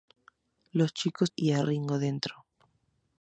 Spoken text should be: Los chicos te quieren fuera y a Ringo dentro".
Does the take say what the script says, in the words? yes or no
no